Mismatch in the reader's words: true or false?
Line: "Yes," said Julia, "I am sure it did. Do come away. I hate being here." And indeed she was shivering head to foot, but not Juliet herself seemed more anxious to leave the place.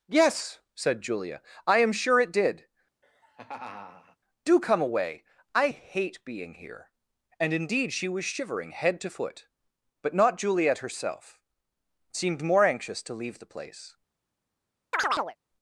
false